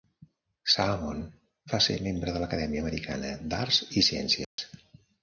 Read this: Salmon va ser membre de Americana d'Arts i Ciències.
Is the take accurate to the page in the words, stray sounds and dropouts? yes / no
no